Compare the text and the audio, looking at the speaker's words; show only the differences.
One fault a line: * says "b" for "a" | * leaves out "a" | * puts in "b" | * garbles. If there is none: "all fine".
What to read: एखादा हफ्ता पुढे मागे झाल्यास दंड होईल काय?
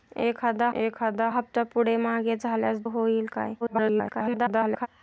* puts in "एखादा"
* leaves out "दंड"
* garbles